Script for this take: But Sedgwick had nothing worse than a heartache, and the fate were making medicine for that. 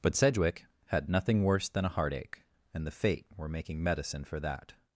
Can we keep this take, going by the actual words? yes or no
yes